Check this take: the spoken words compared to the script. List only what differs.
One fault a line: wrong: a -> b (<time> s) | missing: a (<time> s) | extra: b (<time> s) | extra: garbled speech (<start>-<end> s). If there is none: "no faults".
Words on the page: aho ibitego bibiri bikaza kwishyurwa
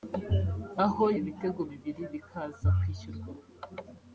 no faults